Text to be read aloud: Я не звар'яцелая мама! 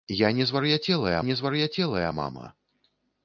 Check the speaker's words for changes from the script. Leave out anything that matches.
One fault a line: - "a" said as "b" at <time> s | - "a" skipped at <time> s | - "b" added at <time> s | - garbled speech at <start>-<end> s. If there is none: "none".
- "не звар'яцелая" added at 1.2 s